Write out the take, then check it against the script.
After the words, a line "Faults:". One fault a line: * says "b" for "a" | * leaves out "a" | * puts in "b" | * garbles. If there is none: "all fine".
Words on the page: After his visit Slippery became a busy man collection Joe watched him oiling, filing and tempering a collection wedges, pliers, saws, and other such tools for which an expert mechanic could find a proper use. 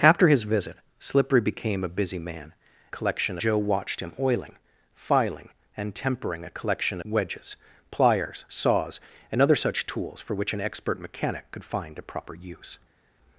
After his visit Slippery became a busy man collection Joe watched him oiling, filing and tempering a collection wedges, pliers, saws, and other such tools for which an expert mechanic could find a proper use.
Faults:
all fine